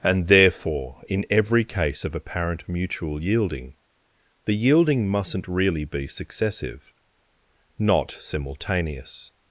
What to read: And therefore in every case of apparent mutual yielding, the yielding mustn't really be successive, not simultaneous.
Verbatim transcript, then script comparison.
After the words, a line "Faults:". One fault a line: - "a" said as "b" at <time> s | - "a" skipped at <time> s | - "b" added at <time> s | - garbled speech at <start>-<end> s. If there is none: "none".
And therefore in every case of apparent mutual yielding, the yielding mustn't really be successive, not simultaneous.
Faults:
none